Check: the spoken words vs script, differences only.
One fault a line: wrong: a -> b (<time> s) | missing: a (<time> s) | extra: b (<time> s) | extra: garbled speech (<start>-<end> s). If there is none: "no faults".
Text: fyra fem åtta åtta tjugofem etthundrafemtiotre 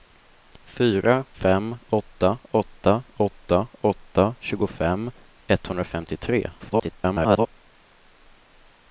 extra: åtta åtta (3.2 s)
extra: garbled speech (6.6-7.5 s)